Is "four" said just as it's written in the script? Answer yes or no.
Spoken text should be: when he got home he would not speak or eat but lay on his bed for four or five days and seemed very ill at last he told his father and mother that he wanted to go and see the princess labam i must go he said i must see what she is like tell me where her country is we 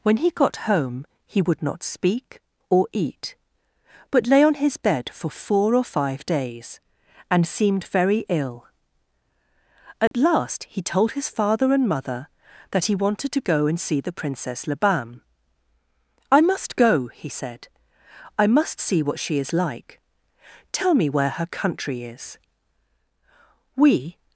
yes